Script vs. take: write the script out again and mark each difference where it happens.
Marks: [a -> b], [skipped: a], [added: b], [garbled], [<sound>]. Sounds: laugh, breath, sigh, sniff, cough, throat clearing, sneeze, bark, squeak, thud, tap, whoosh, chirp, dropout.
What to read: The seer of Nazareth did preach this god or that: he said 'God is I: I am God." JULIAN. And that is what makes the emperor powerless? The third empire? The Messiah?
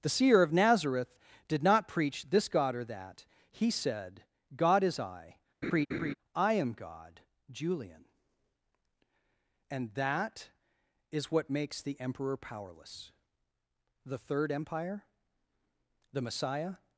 The seer of Nazareth did [added: not] preach this god or that: he said 'God is I: [laugh] I am God." JULIAN. And that is what makes the emperor powerless? The third empire? The Messiah?